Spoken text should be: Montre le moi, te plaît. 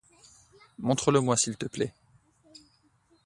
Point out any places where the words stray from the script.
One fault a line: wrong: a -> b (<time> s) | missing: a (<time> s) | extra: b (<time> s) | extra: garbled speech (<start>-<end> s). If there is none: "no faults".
extra: s'il (1.4 s)